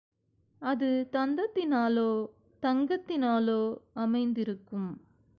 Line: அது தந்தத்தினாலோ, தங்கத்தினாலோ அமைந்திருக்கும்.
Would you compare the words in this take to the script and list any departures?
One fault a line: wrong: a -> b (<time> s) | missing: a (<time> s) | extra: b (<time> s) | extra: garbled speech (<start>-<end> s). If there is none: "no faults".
no faults